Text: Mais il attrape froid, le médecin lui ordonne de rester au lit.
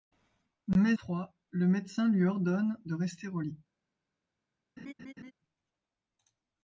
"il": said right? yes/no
no